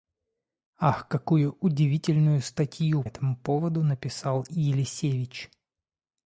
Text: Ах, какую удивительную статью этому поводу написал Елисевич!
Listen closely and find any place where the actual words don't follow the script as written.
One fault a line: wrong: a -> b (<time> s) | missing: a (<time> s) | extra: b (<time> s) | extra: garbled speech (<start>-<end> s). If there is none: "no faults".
no faults